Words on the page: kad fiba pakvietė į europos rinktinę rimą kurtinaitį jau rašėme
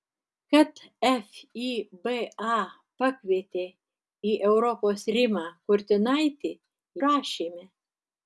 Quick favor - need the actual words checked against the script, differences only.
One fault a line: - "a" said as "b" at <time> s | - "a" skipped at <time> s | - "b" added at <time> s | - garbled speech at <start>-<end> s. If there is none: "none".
- "rinktinę" skipped at 5.0 s
- "jau" skipped at 6.5 s